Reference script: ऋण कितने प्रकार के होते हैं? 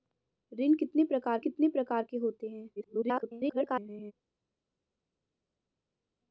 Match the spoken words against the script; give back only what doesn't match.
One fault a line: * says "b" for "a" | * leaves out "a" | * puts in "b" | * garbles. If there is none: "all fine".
* puts in "कितने प्रकार"
* garbles